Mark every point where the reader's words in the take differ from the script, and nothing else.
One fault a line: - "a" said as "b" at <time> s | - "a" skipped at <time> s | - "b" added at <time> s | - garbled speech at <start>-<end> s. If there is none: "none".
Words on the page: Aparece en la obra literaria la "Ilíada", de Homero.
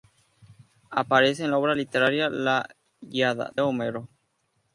- "de" skipped at 3.5 s